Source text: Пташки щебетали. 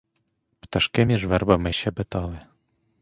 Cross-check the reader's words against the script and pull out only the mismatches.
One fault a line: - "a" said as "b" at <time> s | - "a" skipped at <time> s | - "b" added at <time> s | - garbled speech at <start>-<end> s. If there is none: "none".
- "між вербами" added at 1.0 s